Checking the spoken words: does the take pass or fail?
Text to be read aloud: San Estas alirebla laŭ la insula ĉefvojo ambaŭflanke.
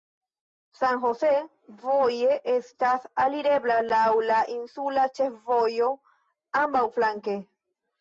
fail